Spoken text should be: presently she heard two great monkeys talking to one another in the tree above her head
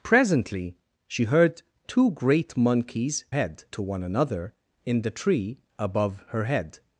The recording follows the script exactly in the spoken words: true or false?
false